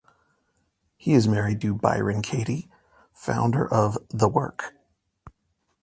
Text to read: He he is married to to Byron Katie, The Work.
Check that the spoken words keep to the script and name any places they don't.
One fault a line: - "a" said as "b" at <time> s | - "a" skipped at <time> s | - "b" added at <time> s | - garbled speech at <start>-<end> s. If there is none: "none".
- "he" skipped at 1.1 s
- "to" skipped at 1.7 s
- "founder of" added at 3.1 s